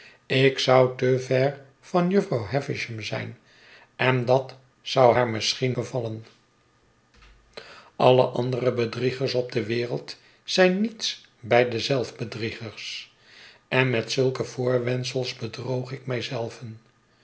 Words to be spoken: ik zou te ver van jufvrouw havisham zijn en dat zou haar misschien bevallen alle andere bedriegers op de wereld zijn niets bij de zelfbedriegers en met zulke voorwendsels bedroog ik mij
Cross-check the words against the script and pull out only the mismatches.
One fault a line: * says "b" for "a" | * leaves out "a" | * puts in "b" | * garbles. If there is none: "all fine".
all fine